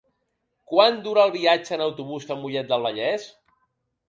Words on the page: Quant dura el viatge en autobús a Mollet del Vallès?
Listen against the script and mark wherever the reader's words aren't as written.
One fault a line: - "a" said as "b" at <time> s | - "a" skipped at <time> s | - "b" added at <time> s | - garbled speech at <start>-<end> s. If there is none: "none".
none